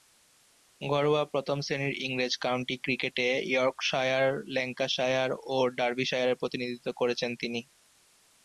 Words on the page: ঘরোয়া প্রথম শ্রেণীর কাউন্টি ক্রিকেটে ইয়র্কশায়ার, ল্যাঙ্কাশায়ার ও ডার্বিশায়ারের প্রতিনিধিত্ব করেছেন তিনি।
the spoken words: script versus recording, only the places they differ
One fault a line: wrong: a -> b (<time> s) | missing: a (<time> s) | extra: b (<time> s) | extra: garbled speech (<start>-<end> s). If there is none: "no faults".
extra: ইংরেজ (2.0 s)